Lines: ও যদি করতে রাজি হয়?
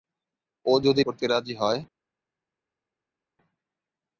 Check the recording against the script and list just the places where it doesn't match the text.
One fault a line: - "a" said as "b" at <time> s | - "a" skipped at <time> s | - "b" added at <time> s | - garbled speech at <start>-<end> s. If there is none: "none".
none